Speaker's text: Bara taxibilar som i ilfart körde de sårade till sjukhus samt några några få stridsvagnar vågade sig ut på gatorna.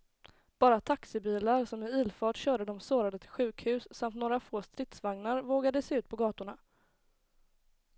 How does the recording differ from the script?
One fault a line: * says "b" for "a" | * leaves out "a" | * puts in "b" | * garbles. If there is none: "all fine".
* leaves out "några"